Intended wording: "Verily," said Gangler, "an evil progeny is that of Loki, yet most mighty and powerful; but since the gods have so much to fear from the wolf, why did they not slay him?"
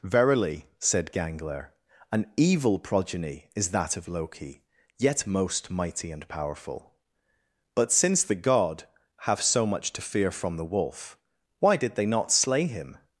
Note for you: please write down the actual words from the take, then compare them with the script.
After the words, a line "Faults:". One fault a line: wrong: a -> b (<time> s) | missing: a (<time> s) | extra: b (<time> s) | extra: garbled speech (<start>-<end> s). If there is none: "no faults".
"Verily," said Gangler, "an evil progeny is that of Loki, yet most mighty and powerful; but since the god have so much to fear from the wolf, why did they not slay him?"
Faults:
wrong: gods -> god (8.3 s)